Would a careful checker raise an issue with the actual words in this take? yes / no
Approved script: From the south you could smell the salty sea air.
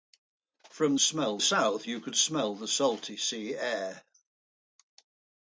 yes